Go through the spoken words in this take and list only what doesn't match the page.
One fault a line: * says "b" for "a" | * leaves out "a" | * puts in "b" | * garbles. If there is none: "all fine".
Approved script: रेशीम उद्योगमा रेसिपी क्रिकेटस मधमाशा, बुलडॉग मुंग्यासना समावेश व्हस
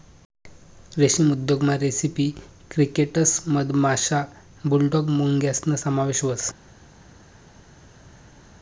all fine